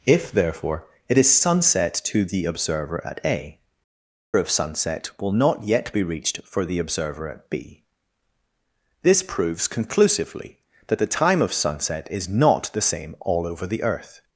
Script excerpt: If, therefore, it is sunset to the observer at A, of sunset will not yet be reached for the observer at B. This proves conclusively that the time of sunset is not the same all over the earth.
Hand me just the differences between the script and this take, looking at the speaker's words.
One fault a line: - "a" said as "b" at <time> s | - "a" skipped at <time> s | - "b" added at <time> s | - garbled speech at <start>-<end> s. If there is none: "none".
none